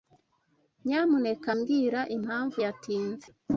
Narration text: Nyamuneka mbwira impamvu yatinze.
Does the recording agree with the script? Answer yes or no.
yes